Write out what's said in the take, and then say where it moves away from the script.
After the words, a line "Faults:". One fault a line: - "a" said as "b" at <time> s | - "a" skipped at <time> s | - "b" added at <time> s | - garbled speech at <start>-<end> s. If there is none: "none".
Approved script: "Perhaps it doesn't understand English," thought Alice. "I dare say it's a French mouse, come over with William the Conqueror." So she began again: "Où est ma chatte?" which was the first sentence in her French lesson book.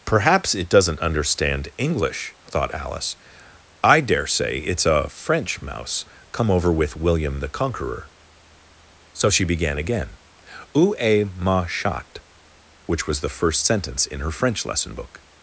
"Perhaps it doesn't understand English," thought Alice. "I dare say it's a French mouse, come over with William the Conqueror." So she began again: "Où est ma chatte?" which was the first sentence in her French lesson book.
Faults:
none